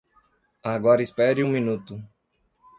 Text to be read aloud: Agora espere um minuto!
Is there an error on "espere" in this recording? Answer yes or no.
no